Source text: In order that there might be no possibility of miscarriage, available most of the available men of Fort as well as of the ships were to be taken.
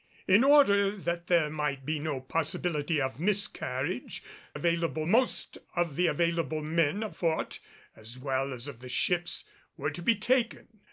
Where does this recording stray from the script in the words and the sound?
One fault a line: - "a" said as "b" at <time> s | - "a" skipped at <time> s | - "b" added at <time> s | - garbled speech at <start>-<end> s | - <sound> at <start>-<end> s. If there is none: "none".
none